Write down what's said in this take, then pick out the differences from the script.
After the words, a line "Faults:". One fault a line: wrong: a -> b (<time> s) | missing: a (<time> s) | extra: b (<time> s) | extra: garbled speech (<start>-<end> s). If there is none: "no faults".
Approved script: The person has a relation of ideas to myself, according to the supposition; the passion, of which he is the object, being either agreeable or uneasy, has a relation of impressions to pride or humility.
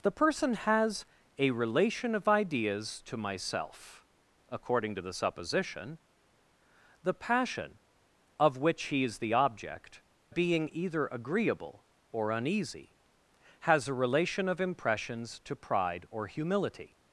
The person has a relation of ideas to myself, according to the supposition; the passion, of which he is the object, being either agreeable or uneasy, has a relation of impressions to pride or humility.
Faults:
no faults